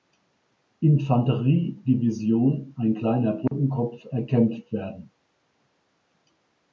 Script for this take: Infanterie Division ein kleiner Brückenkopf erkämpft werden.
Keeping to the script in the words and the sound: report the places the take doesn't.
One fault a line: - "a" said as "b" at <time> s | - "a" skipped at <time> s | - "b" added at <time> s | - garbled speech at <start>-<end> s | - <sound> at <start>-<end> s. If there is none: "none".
- dropout at 3.5-3.5 s